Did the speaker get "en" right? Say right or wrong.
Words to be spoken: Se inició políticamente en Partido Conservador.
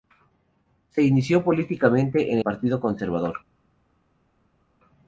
right